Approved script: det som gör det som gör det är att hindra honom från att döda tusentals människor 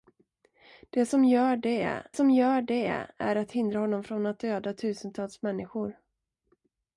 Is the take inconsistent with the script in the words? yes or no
no